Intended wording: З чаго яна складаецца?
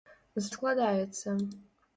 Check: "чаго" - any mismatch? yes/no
yes